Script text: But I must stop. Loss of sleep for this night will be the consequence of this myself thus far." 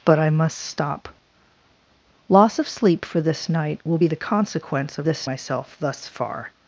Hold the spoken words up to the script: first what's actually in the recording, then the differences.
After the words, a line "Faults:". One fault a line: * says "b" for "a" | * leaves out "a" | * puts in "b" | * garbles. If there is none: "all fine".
But I must stop. Loss of sleep for this night will be the consequence of this myself thus far."
Faults:
all fine